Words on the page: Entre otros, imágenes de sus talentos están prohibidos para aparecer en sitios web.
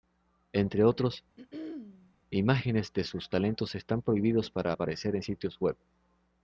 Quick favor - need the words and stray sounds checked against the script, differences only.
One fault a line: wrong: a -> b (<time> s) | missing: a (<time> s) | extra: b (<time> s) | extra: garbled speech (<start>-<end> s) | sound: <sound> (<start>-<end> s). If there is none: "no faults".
sound: throat clearing (1.4-2.2 s)